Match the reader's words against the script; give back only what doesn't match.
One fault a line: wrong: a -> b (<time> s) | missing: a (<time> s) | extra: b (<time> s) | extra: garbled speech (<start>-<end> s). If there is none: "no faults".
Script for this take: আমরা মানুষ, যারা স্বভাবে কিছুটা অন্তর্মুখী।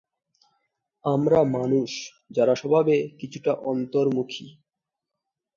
no faults